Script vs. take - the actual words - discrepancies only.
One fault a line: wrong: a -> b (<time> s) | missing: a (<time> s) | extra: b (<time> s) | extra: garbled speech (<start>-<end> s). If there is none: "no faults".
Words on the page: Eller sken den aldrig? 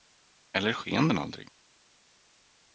no faults